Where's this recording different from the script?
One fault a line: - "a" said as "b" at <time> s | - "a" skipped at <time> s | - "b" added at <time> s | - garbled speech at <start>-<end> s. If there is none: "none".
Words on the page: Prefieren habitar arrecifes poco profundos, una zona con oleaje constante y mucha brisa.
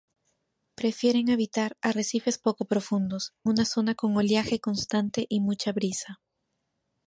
none